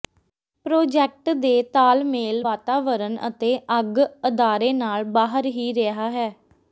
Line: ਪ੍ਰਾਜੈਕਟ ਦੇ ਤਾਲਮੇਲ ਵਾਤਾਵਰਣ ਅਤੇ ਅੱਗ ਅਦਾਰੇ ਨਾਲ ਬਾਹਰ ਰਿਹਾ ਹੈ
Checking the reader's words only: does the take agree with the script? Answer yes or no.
no